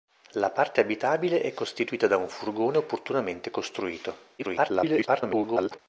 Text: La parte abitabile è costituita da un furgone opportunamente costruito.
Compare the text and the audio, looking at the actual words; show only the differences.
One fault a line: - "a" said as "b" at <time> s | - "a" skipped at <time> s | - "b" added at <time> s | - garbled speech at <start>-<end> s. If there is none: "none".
- garbled speech at 4.4-5.8 s